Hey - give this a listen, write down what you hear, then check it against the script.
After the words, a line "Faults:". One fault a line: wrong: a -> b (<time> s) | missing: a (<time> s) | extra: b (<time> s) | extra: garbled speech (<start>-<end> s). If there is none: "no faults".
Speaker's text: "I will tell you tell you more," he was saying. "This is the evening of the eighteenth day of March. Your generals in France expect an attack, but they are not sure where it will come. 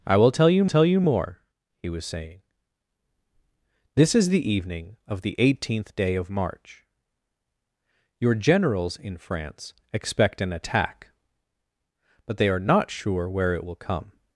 "I will tell you tell you more," he was saying. "This is the evening of the eighteenth day of March. Your generals in France expect an attack, but they are not sure where it will come.
Faults:
no faults